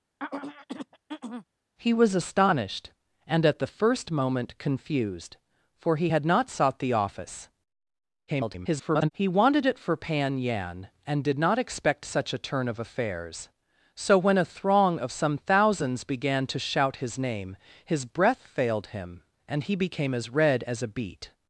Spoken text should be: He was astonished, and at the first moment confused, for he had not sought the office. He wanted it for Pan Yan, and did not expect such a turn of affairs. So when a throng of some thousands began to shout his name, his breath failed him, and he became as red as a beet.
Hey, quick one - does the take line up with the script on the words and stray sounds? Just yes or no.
no